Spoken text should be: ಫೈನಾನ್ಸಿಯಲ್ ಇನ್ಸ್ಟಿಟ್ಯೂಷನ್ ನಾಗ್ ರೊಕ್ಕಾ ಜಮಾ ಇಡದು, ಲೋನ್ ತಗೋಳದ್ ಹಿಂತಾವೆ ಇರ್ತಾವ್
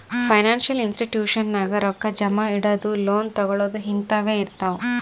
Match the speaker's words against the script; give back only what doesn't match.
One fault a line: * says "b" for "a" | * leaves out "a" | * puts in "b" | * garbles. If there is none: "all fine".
all fine